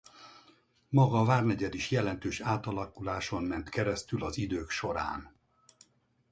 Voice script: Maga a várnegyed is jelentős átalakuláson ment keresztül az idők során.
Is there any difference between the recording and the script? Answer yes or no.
no